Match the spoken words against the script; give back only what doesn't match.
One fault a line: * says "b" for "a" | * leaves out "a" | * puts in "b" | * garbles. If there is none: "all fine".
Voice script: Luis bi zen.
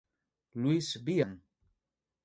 all fine